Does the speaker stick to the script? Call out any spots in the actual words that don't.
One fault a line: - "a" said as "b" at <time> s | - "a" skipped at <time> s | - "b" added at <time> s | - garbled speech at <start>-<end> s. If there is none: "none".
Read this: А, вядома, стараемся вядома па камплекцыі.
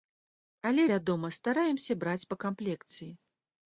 - "А" said as "Але" at 0.7 s
- "вядома" said as "браць" at 2.0 s